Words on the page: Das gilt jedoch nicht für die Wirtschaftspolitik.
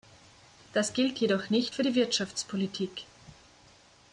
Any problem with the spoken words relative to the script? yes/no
no